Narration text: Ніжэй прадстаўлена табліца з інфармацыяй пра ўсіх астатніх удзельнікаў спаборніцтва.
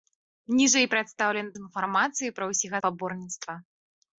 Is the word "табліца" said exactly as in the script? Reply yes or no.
no